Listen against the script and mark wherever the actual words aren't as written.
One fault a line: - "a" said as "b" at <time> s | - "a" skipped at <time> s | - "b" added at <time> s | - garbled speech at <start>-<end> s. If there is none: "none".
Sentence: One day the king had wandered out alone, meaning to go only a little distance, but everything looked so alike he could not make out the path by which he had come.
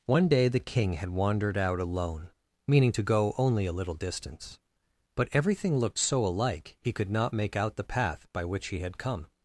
none